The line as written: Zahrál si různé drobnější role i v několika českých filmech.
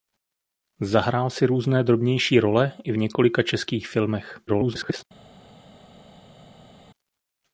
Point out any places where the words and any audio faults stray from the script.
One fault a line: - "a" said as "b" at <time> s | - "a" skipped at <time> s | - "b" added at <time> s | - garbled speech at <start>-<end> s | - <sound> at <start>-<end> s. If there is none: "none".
- garbled speech at 4.5-5.0 s